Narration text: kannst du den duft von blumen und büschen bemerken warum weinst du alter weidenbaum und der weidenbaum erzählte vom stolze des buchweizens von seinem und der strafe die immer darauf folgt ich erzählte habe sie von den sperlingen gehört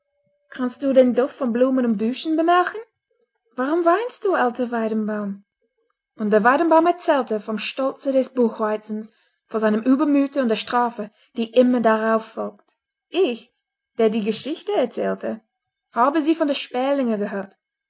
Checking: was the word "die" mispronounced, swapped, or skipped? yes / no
no